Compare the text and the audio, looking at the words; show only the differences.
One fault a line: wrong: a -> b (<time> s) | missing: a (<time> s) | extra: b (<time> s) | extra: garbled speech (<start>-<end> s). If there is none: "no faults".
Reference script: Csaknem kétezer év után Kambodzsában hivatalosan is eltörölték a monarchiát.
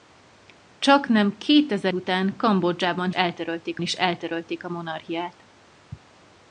missing: év (1.9 s)
wrong: hivatalosan -> eltörölték (3.1 s)